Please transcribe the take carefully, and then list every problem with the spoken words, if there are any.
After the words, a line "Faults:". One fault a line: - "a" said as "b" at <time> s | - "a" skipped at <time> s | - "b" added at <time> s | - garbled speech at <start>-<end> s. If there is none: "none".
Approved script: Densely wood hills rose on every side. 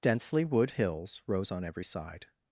Densely wood hills rose on every side.
Faults:
none